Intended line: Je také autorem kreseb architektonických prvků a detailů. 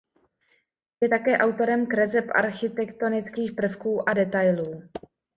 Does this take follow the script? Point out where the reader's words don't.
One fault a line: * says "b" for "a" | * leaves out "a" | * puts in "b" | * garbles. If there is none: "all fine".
all fine